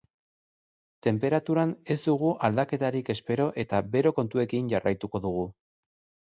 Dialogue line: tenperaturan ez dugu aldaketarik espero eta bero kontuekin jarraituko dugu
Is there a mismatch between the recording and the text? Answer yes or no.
no